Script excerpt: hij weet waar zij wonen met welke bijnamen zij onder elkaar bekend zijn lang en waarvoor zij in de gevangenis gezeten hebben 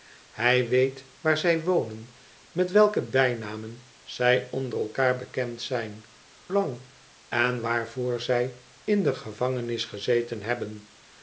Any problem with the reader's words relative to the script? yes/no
no